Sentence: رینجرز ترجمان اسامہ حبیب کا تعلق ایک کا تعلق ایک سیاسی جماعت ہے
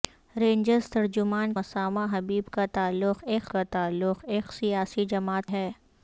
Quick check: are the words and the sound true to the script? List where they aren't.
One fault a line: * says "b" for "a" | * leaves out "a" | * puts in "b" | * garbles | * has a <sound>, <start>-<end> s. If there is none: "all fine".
all fine